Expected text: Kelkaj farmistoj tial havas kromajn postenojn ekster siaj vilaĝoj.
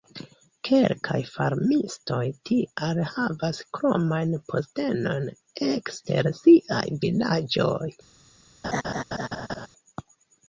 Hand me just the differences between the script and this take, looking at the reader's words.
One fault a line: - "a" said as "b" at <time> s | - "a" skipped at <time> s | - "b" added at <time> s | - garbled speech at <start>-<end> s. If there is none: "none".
none